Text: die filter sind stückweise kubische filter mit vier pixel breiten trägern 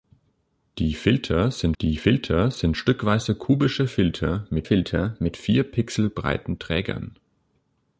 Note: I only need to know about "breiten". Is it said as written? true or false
true